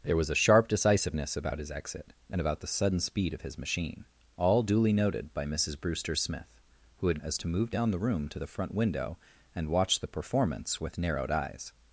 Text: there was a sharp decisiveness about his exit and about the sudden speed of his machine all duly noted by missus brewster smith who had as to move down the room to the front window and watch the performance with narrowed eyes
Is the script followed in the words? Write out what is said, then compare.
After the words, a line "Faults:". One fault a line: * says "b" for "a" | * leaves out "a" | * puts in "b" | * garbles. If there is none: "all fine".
there was a sharp decisiveness about his exit and about the sudden speed of his machine all duly noted by missus brewster smith who had as to move down the room to the front window and watch the performance with narrowed eyes
Faults:
all fine